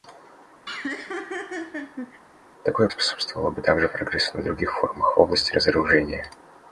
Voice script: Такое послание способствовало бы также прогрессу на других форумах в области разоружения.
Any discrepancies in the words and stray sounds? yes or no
yes